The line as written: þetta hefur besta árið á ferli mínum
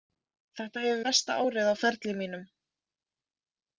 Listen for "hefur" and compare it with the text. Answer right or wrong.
right